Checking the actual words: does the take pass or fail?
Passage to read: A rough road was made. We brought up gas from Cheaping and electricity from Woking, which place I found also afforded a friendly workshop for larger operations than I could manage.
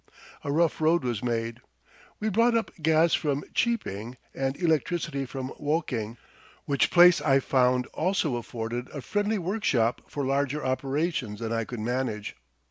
pass